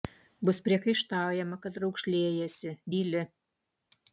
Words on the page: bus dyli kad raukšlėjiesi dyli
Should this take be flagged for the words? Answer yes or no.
yes